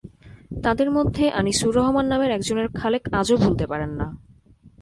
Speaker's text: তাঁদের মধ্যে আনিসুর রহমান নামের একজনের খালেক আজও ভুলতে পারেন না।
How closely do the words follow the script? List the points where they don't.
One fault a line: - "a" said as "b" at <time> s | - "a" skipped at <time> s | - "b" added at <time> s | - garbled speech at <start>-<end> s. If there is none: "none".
none